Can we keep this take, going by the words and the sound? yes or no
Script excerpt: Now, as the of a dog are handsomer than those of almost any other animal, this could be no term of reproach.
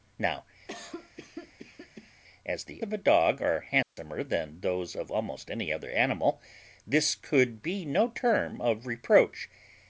no